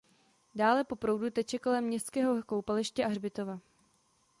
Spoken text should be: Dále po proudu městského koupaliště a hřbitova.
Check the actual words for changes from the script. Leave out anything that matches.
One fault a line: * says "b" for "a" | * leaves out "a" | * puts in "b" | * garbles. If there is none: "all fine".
* puts in "teče kolem"